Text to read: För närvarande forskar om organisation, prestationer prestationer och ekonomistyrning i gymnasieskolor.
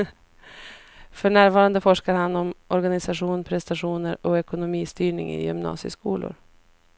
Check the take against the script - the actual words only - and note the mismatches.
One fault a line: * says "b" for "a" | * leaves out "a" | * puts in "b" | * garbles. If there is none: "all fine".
* puts in "han"
* leaves out "prestationer"